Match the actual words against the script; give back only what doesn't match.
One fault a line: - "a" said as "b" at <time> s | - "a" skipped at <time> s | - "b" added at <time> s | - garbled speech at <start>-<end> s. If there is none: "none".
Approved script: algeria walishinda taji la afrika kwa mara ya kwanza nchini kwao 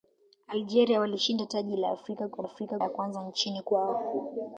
- "mara" said as "afrika" at 2.4 s